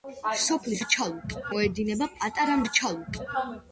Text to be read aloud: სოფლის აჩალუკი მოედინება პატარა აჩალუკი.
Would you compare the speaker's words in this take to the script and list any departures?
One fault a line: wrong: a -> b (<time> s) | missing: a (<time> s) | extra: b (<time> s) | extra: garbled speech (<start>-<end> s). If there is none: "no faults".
no faults